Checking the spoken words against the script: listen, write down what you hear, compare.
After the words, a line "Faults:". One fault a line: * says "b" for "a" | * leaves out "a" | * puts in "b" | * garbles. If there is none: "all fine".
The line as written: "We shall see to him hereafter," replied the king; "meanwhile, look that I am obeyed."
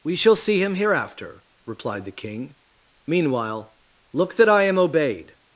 "We shall see him hereafter," replied the king; "meanwhile, look that I am obeyed."
Faults:
* leaves out "to"